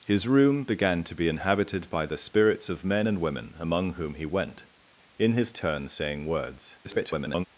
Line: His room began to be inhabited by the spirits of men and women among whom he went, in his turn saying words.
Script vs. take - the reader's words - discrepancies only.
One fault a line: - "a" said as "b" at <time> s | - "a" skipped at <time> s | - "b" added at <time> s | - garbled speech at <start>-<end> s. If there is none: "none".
- garbled speech at 6.8-7.5 s